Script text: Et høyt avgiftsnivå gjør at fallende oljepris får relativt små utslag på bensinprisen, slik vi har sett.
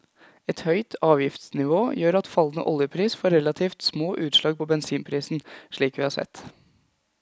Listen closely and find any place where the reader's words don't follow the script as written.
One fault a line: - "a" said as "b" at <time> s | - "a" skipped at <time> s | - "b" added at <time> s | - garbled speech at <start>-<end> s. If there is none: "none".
none